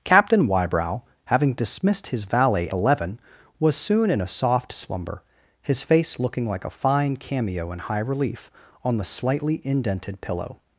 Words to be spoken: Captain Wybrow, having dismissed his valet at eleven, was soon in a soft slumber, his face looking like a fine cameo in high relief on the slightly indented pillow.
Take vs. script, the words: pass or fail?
fail